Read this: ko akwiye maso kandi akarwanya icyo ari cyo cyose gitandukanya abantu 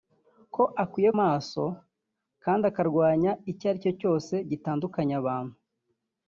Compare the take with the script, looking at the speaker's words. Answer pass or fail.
pass